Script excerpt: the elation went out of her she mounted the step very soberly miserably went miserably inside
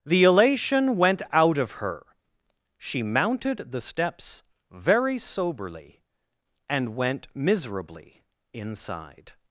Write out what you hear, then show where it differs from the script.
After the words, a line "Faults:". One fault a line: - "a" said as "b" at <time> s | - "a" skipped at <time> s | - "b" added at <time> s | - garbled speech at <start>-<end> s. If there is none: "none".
the elation went out of her she mounted the steps very soberly and went miserably inside
Faults:
- "step" said as "steps" at 3.8 s
- "miserably" said as "and" at 6.7 s